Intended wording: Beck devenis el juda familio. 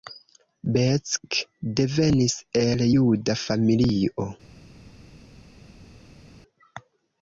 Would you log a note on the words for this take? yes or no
no